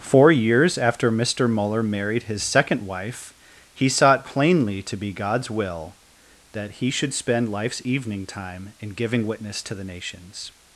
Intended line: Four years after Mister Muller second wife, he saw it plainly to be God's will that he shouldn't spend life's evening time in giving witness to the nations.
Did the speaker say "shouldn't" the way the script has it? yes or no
no